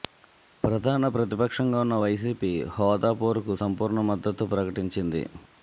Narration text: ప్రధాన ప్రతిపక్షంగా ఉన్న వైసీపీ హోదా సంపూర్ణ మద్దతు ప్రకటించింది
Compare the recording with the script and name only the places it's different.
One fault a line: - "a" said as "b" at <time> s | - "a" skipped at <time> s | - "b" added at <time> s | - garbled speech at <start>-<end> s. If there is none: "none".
- "పోరుకు" added at 3.2 s